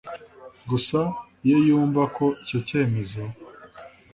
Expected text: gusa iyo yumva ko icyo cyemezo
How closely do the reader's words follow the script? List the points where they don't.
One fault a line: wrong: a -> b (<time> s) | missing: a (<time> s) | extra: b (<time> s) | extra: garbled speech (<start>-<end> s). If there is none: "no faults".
no faults